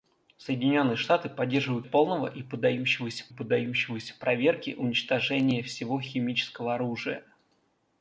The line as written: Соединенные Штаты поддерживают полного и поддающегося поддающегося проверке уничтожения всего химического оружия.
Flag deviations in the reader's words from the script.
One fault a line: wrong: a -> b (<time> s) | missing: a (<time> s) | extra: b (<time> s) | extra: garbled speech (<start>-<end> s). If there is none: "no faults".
no faults